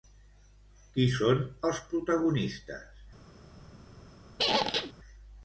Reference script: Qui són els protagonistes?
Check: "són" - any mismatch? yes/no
no